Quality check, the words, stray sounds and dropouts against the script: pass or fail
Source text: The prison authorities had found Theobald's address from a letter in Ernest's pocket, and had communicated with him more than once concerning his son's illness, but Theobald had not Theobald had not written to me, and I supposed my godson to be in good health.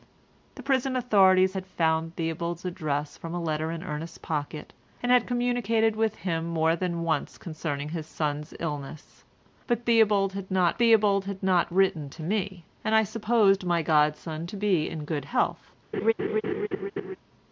fail